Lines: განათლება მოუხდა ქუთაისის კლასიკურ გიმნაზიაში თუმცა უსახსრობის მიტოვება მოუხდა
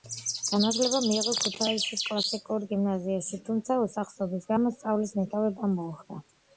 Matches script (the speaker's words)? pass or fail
fail